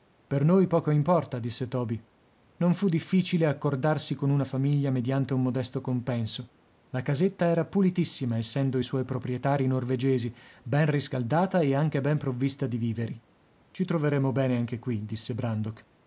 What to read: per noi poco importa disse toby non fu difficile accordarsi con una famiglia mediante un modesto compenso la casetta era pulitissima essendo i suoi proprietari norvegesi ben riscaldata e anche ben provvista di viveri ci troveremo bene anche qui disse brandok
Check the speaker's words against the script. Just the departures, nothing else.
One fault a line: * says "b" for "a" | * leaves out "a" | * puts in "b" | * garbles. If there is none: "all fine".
all fine